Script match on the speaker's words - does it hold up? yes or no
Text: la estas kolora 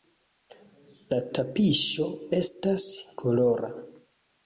no